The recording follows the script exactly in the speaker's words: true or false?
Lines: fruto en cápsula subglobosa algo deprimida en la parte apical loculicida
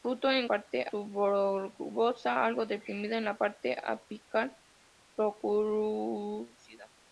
false